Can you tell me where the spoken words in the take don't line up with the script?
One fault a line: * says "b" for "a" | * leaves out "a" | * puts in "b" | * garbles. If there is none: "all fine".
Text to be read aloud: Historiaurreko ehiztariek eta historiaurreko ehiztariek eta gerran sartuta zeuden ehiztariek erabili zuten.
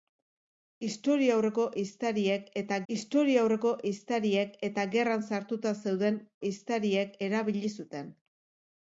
all fine